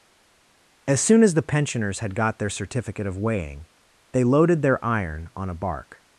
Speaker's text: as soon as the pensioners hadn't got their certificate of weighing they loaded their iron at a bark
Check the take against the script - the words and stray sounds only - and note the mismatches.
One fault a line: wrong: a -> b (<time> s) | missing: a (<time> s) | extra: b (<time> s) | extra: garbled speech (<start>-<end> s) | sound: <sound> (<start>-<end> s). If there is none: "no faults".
wrong: hadn't -> had (2.0 s)
wrong: at -> on (5.3 s)